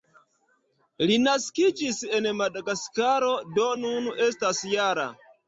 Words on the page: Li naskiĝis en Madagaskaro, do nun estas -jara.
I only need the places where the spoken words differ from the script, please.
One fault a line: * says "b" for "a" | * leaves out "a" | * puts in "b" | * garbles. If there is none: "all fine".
all fine